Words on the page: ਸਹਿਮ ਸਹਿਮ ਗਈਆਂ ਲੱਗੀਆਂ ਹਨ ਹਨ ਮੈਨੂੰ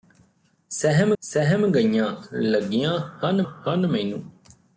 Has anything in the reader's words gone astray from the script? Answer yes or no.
no